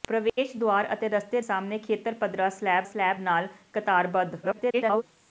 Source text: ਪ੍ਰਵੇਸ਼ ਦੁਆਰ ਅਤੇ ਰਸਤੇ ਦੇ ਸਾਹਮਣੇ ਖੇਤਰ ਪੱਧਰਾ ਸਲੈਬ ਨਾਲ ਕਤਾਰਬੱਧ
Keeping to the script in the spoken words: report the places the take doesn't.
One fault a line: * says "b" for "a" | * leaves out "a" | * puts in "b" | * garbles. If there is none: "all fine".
* leaves out "ਦੇ"
* puts in "ਸਲੈਬ"
* garbles